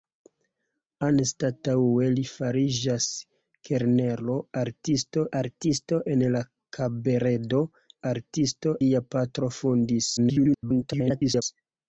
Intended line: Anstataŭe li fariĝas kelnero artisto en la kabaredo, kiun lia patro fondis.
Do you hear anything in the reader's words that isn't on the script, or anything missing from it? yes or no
yes